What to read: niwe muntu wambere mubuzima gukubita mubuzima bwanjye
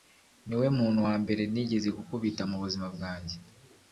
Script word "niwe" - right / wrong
right